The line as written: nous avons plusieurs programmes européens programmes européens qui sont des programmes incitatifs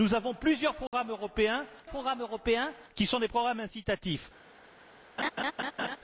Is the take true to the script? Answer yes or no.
yes